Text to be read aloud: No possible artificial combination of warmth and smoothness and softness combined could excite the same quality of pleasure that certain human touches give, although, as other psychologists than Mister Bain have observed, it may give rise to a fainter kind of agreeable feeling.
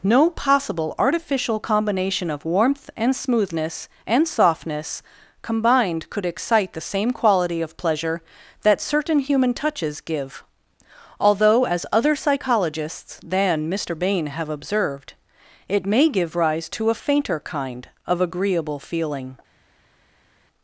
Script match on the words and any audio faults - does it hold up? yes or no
yes